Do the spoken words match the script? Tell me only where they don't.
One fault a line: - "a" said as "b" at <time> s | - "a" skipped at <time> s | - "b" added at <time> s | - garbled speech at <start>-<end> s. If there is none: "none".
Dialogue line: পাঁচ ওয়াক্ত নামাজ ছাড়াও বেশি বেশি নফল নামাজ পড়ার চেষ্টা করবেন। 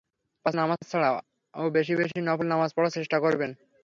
- "ওয়াক্ত" skipped at 0.6 s